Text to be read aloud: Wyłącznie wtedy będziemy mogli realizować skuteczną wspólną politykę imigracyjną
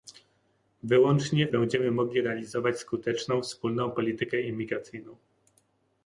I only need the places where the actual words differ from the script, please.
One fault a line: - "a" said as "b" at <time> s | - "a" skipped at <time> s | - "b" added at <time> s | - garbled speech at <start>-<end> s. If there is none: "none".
- "wtedy" skipped at 1.5 s